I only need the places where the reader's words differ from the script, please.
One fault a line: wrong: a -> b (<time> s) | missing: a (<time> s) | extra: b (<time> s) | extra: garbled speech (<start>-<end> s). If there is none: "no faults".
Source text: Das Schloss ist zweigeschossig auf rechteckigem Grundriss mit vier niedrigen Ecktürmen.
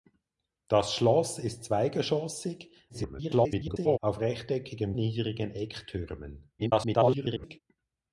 extra: garbled speech (2.9-4.0 s)
missing: Grundriss mit vier (4.9 s)
extra: garbled speech (6.6-7.6 s)